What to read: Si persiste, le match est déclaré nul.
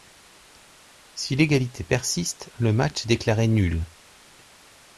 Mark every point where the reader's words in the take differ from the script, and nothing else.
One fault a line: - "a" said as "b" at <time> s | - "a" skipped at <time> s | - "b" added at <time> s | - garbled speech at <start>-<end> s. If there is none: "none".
- "l'égalité" added at 1.4 s